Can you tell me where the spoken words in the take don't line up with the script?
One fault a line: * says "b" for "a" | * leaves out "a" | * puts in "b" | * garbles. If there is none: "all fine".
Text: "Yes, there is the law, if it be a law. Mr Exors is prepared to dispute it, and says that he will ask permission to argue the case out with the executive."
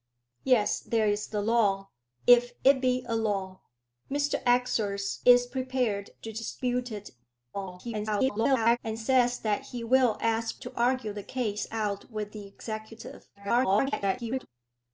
* garbles
* leaves out "permission"
* garbles